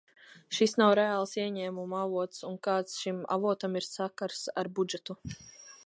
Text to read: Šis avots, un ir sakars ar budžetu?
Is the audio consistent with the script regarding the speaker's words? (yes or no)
no